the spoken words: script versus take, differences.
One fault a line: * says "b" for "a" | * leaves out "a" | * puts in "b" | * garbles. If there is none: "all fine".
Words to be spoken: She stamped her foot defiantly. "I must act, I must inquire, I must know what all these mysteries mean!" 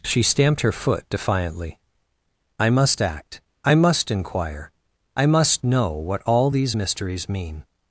all fine